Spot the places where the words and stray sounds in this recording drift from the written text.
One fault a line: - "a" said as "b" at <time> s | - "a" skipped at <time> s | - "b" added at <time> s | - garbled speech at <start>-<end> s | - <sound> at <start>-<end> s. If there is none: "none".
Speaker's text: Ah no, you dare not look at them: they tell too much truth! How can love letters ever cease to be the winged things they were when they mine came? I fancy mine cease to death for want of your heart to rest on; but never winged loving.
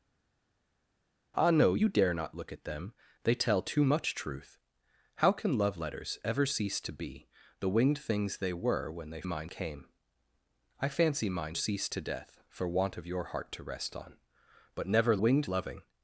none